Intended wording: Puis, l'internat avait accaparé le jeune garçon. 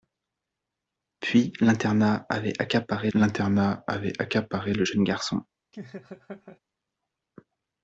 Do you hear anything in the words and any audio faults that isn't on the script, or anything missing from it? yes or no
yes